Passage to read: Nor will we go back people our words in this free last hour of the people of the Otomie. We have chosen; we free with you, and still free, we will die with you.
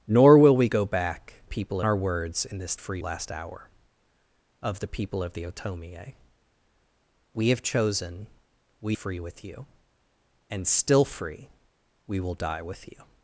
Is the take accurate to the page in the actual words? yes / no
yes